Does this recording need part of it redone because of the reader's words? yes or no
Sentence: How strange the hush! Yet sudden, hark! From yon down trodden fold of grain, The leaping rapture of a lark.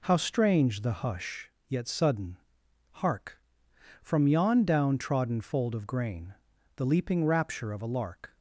no